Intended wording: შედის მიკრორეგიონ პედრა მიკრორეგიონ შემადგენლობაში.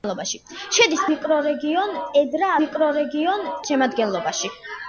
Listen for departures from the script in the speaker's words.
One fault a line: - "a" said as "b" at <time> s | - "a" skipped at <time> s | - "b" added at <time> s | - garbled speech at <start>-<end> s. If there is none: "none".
none